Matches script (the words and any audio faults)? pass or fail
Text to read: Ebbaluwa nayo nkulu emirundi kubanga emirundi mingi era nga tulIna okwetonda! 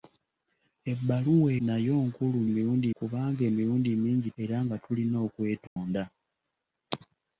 fail